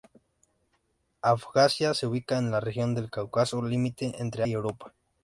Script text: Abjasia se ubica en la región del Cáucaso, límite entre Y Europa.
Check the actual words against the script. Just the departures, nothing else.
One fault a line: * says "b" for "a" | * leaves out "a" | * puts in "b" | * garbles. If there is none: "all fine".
all fine